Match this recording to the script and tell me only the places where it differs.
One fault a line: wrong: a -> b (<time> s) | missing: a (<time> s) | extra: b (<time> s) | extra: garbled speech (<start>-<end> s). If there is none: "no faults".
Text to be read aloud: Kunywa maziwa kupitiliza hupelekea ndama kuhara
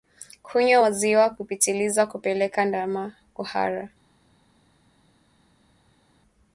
no faults